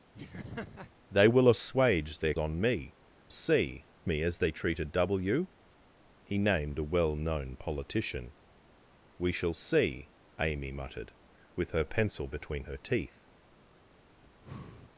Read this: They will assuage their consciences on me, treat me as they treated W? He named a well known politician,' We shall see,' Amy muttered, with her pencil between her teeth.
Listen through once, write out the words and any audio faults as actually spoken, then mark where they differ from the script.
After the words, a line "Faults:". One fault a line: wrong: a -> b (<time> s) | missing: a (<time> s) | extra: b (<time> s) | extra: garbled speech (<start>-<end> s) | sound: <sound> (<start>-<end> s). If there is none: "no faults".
They will assuage their on me, see me as they treated W? He named a well known politician,' We shall see,' Amy muttered, with her pencil between her teeth.
Faults:
sound: laugh (0.1-0.9 s)
missing: consciences (2.3 s)
wrong: treat -> see (3.3 s)
sound: breath (14.2-14.9 s)